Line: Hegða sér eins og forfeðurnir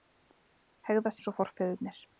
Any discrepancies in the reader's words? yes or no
yes